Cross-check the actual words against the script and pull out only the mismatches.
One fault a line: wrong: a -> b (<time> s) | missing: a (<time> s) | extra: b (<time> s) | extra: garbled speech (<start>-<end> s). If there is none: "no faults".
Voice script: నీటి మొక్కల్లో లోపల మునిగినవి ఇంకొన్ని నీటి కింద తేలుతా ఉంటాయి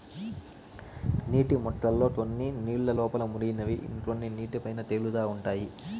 extra: కొన్ని నీళ్ళ (2.1 s)
wrong: కింద -> పైన (4.6 s)